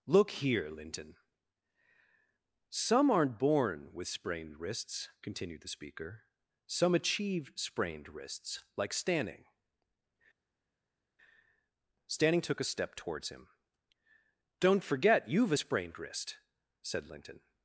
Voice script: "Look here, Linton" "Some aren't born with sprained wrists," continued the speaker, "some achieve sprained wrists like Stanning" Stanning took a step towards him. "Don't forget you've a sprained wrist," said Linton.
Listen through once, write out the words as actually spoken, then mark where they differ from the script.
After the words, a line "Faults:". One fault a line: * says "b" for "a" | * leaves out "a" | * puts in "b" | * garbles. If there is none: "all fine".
"Look here, Linton" "Some aren't born with sprained wrists," continued the speaker, "some achieve sprained wrists like Stanning" Stanning took a step towards him. "Don't forget you've a sprained wrist," said Linton.
Faults:
all fine